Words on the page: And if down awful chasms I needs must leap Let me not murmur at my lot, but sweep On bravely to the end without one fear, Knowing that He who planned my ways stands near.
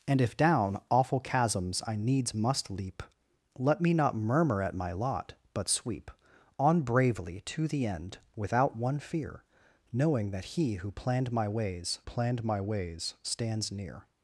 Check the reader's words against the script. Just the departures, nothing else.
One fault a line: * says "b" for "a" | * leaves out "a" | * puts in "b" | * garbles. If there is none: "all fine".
* puts in "planned my ways"